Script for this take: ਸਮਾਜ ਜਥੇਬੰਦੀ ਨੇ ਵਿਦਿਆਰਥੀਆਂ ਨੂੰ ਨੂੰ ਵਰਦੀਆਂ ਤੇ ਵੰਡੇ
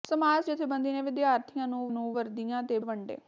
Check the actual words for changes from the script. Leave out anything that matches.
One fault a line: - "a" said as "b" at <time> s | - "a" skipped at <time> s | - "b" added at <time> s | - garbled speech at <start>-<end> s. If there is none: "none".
none